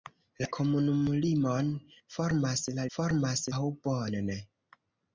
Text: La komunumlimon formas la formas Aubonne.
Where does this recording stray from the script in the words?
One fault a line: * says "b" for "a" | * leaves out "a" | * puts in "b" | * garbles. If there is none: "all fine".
all fine